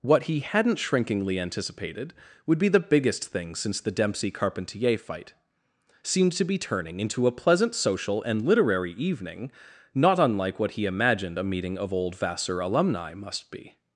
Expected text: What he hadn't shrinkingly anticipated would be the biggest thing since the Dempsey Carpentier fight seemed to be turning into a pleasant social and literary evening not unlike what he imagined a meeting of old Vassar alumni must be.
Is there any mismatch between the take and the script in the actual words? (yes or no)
no